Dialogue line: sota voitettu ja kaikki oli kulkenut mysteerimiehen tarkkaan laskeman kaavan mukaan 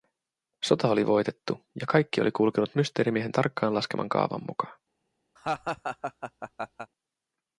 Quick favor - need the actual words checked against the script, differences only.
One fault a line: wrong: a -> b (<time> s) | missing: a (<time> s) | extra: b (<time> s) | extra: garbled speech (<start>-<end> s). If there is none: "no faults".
extra: oli (0.9 s)